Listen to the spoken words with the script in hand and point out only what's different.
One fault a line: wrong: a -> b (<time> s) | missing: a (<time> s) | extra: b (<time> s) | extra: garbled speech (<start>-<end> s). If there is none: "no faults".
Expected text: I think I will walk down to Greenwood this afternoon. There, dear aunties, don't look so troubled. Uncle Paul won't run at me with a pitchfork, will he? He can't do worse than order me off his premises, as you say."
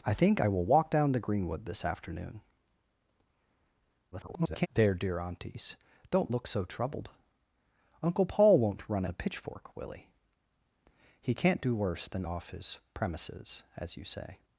extra: garbled speech (4.1-4.7 s)
missing: at me with (9.0 s)
missing: order me (12.2 s)